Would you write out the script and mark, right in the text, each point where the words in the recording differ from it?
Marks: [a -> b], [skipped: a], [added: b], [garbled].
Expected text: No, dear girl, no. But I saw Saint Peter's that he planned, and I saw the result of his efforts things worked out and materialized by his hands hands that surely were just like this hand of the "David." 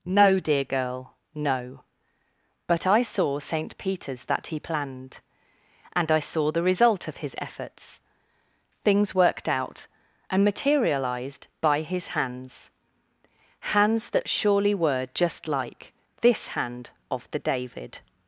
No, dear girl, no. But I saw Saint Peter's that he planned, and I saw the result of his efforts things worked out and materialized by his hands hands that surely were just like this hand of the "David."